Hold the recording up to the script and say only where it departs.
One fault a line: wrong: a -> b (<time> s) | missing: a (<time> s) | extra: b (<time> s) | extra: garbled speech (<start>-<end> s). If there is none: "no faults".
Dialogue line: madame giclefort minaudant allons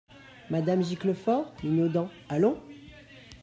no faults